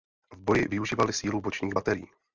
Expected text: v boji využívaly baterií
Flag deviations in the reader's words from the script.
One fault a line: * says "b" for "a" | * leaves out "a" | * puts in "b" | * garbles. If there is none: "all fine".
* puts in "sílu bočních"